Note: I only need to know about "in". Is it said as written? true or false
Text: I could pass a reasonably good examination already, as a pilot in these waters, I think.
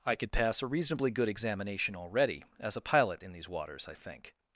true